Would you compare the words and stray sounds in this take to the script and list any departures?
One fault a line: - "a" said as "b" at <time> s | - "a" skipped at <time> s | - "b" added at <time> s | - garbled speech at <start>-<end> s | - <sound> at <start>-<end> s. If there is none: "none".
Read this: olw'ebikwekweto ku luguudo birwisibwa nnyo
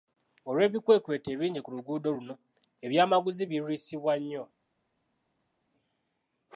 - "ebingi" added at 1.4 s
- "luno ebyamaguzi" added at 2.1 s